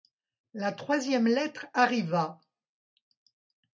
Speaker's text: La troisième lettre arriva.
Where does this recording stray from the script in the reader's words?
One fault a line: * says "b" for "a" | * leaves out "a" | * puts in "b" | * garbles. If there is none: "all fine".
all fine